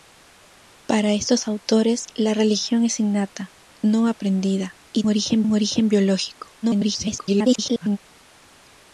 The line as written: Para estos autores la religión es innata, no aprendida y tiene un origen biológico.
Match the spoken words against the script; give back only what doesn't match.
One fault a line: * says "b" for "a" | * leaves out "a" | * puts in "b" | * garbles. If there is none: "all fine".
* says "origen" for "tiene"
* garbles